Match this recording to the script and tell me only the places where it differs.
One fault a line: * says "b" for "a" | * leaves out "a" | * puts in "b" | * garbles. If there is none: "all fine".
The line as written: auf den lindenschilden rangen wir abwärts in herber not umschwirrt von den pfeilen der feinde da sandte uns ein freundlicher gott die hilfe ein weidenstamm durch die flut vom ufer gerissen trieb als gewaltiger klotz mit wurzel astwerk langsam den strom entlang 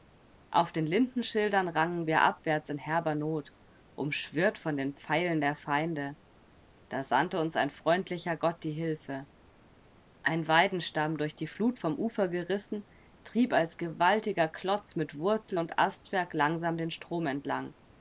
* puts in "und"